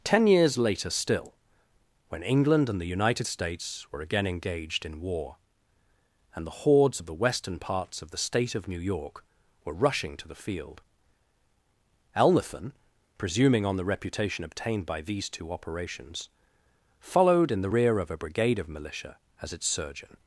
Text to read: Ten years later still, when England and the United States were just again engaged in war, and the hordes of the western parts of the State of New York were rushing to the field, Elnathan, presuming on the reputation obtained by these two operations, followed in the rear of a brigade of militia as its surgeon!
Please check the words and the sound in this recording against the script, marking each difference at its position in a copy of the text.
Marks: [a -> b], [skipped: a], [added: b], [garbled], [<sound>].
Ten years later still, when England and the United States were [skipped: just] again engaged in war, and the hordes of the western parts of the State of New York were rushing to the field, Elnathan, presuming on the reputation obtained by these two operations, followed in the rear of a brigade of militia as its surgeon!